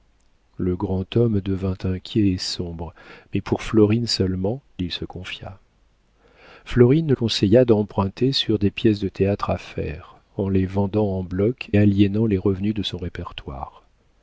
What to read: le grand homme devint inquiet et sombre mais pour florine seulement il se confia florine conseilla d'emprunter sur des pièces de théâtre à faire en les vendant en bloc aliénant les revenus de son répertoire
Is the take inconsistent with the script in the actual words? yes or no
no